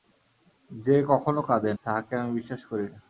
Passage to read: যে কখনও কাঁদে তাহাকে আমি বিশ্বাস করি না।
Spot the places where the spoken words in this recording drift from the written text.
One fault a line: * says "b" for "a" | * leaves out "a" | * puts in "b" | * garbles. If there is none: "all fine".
all fine